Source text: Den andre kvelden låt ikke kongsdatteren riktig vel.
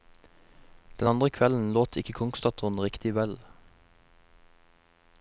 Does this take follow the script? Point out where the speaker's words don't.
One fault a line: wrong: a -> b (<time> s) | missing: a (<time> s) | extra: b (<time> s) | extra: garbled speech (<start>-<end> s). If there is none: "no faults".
no faults